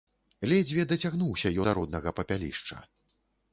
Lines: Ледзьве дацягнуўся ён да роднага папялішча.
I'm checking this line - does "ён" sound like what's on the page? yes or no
no